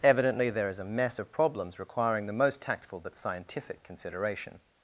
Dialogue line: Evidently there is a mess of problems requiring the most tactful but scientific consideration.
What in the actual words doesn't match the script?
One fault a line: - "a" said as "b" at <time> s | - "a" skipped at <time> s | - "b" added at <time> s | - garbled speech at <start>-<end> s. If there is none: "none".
none